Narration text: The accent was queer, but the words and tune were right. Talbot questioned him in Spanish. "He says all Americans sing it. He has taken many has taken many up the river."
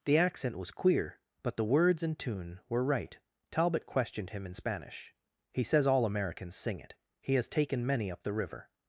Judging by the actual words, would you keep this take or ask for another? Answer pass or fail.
fail